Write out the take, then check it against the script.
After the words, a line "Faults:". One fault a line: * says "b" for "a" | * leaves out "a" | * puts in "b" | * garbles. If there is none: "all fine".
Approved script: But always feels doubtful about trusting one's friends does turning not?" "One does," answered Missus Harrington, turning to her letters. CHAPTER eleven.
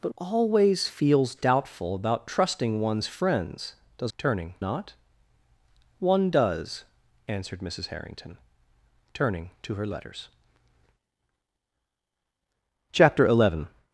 But always feels doubtful about trusting one's friends does turning not?" "One does," answered Missus Harrington, turning to her letters. CHAPTER eleven.
Faults:
all fine